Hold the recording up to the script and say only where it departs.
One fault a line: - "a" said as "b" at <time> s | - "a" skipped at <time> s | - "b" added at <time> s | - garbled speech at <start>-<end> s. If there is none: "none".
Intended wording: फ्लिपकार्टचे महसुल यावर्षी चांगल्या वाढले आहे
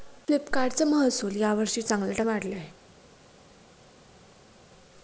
none